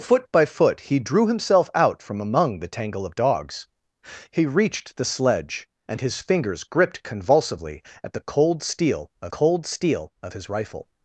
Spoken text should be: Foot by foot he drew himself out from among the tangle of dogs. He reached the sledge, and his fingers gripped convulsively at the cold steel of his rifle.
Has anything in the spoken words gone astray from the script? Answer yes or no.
yes